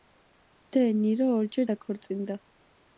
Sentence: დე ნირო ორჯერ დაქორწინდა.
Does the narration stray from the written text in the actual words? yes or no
no